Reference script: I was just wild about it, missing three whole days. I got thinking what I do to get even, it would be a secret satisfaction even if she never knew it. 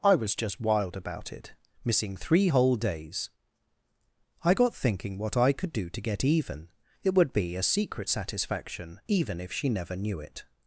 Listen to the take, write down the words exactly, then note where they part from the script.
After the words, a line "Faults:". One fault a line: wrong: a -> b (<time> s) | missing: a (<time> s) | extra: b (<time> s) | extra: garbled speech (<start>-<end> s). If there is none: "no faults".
I was just wild about it, missing three whole days. I got thinking what I could do to get even, it would be a secret satisfaction even if she never knew it.
Faults:
extra: could (5.5 s)